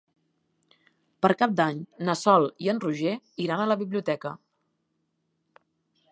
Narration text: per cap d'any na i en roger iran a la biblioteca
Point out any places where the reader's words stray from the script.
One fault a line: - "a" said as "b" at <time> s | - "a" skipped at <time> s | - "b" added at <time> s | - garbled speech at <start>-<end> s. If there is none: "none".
- "sol" added at 2.2 s